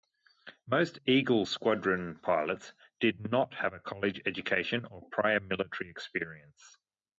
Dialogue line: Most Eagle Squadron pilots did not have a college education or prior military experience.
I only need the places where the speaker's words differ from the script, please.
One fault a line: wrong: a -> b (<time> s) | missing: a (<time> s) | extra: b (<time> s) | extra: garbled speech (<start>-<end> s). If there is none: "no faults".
no faults